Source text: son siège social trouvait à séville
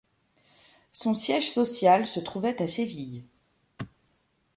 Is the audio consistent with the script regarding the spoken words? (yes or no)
no